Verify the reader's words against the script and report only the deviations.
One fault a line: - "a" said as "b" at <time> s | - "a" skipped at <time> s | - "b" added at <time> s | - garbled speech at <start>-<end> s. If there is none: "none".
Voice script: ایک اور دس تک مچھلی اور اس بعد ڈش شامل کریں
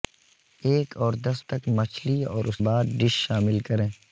none